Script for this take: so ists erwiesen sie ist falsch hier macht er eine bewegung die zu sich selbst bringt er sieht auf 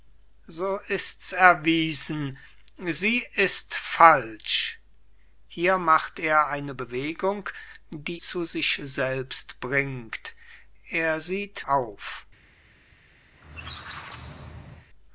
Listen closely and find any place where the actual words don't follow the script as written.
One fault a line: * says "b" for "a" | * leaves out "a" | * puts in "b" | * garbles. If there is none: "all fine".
all fine